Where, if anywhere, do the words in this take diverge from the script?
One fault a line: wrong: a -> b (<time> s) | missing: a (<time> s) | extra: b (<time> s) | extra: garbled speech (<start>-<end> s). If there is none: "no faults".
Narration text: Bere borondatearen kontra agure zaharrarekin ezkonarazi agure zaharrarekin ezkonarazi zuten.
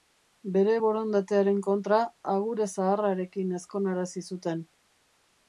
missing: agure zaharrarekin ezkonarazi (4.3 s)